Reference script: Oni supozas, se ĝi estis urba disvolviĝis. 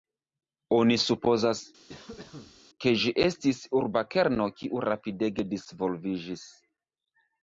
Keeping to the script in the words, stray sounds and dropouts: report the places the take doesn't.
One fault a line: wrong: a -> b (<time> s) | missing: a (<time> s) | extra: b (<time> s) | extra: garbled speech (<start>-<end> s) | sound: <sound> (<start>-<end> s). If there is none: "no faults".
sound: cough (1.9-2.6 s)
wrong: se -> ke (2.8 s)
extra: kerno kiu rapidege (4.2 s)